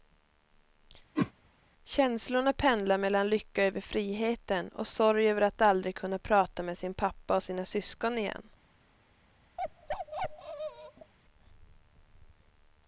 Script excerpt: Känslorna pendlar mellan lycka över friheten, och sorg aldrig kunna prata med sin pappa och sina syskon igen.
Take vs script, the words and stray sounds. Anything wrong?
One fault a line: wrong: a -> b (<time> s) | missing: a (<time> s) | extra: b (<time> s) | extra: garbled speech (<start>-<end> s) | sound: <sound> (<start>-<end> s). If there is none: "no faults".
sound: whoosh (1.1-1.3 s)
extra: över att (5.3 s)
sound: bark (9.6-11.1 s)